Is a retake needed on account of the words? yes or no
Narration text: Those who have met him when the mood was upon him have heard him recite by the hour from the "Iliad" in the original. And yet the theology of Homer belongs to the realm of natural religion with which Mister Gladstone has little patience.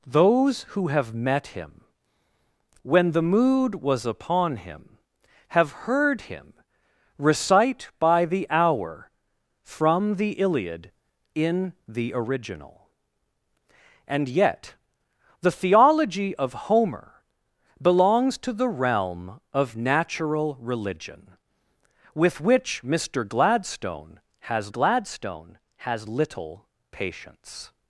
yes